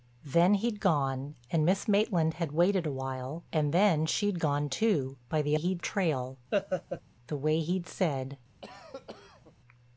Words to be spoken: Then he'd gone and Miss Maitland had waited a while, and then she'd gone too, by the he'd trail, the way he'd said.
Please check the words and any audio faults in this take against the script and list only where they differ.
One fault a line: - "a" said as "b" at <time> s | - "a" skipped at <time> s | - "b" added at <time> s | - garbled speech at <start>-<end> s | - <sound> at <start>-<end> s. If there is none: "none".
- laugh at 6.5-7.0 s
- cough at 8.6-9.5 s